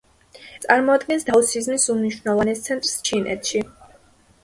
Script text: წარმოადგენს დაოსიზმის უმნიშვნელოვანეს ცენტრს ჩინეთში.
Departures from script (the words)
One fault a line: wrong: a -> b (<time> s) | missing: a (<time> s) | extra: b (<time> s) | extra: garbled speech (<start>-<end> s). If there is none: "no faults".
no faults